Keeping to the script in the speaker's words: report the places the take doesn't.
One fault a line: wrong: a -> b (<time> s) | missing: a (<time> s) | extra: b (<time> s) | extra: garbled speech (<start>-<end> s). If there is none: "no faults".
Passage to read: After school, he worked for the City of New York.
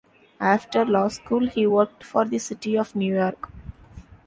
extra: law (0.8 s)